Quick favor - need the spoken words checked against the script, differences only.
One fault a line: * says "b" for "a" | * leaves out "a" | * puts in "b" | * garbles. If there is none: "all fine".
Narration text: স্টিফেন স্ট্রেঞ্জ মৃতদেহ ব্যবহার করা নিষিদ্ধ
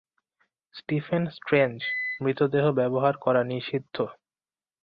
all fine